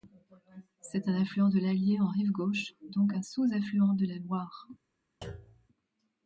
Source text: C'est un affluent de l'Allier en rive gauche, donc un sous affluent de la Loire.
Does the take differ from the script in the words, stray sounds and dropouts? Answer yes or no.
yes